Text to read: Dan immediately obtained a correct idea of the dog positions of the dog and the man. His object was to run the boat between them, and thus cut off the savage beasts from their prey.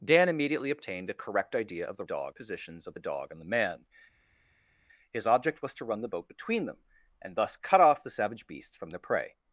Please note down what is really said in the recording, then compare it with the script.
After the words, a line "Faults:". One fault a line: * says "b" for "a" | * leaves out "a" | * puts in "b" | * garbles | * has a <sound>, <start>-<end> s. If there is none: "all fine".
Dan immediately obtained a correct idea of the dog positions of the dog and the man. His object was to run the boat between them, and thus cut off the savage beasts from their prey.
Faults:
all fine